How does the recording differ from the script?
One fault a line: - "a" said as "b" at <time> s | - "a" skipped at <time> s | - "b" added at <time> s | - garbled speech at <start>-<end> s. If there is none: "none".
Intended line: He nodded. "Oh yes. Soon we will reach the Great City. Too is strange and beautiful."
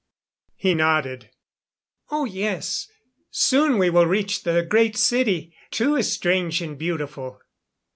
none